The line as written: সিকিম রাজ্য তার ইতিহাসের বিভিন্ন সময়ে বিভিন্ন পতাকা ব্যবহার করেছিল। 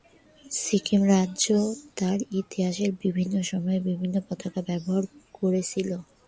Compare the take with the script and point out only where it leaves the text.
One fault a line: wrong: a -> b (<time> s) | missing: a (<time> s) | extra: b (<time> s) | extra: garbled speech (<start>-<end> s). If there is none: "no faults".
no faults